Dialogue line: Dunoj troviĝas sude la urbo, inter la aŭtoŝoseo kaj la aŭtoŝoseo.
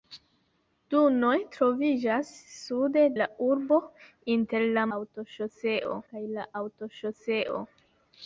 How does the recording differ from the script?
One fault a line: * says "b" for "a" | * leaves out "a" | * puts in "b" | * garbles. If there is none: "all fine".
all fine